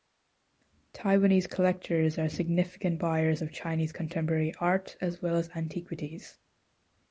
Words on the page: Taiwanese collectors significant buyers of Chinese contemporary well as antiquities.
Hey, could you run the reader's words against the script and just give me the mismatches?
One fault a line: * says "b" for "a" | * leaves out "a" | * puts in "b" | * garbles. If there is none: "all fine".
* puts in "are"
* puts in "art as"